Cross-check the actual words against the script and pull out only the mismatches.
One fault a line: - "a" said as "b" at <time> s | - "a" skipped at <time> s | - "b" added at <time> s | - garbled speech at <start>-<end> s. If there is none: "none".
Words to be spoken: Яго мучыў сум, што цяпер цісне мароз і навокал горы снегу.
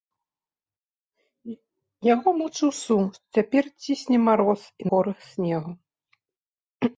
- "навокал" skipped at 4.9 s